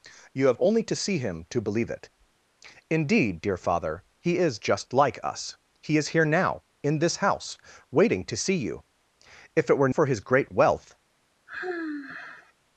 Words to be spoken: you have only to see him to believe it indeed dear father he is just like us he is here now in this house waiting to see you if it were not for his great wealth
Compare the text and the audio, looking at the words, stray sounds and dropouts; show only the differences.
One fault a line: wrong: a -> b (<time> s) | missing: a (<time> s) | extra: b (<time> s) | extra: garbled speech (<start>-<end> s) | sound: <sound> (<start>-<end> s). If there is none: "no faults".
missing: not (9.9 s)
sound: sigh (11.5-12.5 s)